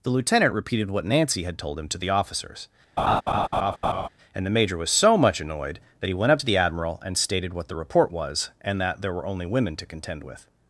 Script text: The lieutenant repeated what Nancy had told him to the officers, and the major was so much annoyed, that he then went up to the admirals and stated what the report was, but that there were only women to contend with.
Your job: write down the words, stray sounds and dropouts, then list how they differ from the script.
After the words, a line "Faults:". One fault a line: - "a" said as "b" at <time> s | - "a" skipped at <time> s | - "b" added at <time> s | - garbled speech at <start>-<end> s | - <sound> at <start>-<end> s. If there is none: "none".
The lieutenant repeated what Nancy had told him to the officers, and the major was so much annoyed, that he went up to the admiral and stated what the report was, and that there were only women to contend with.
Faults:
- laugh at 3.0-4.1 s
- "then" skipped at 6.1 s
- "admirals" said as "admiral" at 6.6 s
- "but" said as "and" at 8.6 s